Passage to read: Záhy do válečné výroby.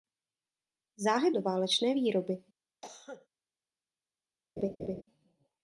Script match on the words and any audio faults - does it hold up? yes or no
no